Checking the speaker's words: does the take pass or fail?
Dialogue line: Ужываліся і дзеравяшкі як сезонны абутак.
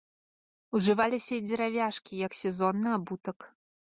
pass